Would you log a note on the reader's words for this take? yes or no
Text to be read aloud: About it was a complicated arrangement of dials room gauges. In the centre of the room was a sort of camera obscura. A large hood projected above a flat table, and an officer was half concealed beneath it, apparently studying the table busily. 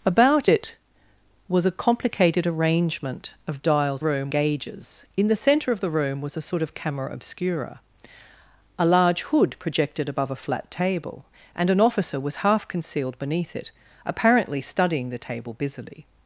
no